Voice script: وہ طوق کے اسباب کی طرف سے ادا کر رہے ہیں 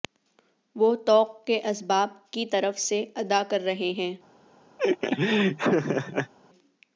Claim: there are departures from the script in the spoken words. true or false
false